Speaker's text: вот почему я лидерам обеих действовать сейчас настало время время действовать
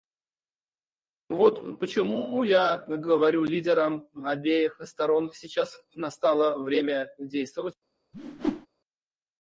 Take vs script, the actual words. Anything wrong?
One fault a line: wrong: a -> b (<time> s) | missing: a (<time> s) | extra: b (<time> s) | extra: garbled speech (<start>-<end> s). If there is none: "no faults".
extra: говорю (2.9 s)
wrong: действовать -> сторон (4.8 s)
missing: время (7.1 s)